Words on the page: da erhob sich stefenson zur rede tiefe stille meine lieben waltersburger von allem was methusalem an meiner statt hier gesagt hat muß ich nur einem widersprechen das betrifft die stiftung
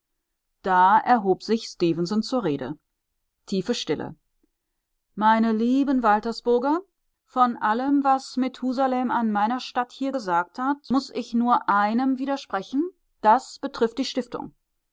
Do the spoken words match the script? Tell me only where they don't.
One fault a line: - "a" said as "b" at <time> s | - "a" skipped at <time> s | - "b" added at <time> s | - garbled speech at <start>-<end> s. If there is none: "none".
none